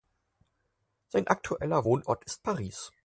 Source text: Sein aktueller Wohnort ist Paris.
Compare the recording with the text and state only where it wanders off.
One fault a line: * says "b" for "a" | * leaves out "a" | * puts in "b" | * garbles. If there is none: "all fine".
all fine